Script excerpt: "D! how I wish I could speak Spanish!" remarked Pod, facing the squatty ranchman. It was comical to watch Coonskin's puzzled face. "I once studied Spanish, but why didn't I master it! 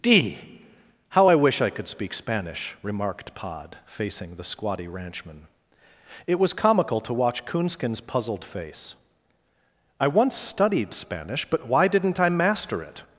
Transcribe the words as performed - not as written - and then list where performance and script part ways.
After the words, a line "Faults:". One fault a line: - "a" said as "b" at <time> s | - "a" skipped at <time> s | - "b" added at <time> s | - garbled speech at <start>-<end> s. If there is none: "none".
"D! how I wish I could speak Spanish!" remarked Pod, facing the squatty ranchman. It was comical to watch Coonskin's puzzled face. "I once studied Spanish, but why didn't I master it!
Faults:
none